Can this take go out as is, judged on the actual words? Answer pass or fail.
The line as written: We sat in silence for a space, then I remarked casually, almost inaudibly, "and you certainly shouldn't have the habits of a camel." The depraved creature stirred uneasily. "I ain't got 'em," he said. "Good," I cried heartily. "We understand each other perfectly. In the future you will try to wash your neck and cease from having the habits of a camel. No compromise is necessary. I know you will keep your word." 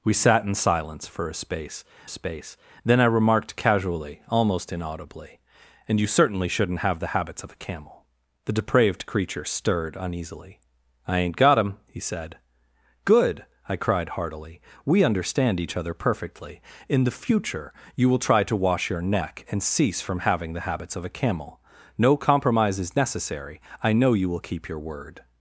fail